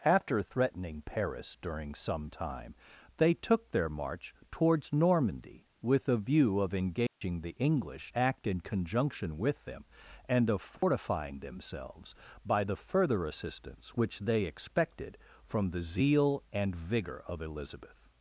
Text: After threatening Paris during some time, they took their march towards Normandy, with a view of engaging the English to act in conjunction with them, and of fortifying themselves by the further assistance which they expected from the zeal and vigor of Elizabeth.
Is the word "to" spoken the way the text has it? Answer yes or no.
no